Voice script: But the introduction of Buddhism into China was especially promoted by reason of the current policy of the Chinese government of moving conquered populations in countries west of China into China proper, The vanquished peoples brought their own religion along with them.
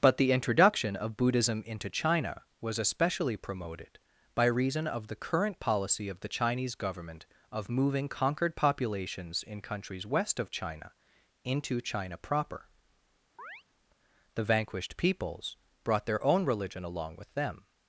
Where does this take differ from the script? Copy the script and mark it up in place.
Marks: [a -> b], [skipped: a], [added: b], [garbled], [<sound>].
But the introduction of Buddhism into China was especially promoted by reason of the current policy of the Chinese government of moving conquered populations in countries west of China into China proper, [chirp] The vanquished peoples brought their own religion along with them.